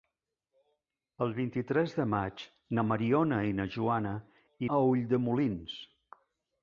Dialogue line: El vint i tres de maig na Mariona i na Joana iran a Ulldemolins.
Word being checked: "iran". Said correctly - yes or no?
no